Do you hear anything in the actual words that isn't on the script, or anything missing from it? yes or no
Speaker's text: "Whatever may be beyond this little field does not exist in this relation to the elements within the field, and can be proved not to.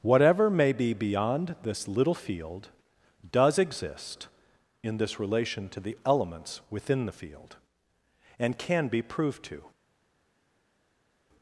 yes